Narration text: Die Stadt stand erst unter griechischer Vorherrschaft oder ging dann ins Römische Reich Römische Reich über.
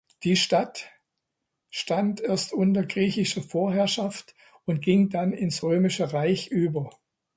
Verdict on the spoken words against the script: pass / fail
fail